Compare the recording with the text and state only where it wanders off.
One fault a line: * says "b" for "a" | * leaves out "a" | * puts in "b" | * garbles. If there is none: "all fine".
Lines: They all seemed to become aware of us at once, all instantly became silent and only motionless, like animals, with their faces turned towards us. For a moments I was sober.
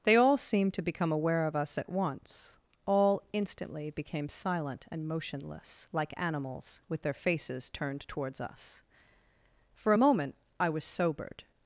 * leaves out "only"
* says "moment" for "moments"
* says "sobered" for "sober"